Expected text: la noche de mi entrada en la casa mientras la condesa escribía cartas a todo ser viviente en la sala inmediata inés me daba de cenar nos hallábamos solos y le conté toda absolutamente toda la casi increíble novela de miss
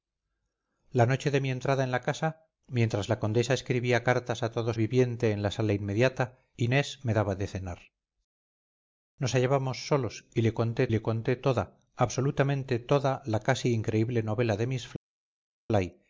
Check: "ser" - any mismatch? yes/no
yes